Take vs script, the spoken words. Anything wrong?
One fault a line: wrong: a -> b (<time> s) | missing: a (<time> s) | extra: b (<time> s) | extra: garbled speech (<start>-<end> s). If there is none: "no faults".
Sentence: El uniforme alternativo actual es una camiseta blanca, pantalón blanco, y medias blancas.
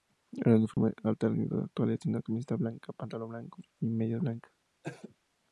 no faults